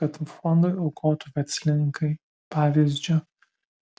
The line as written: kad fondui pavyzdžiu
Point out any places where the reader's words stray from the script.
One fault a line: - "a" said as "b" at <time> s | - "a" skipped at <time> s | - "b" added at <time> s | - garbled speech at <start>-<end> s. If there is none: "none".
- "aukotų verslininkai" added at 0.8 s